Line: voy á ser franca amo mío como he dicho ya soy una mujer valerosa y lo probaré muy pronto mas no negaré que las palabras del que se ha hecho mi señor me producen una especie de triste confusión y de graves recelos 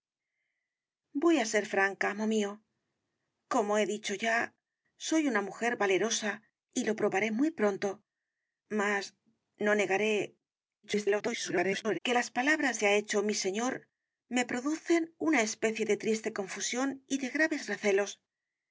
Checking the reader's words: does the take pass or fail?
fail